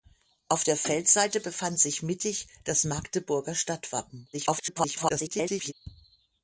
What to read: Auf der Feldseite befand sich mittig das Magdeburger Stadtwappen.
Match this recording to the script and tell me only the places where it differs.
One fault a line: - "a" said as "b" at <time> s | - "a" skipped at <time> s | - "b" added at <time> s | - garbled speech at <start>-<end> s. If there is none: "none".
- garbled speech at 4.3-5.7 s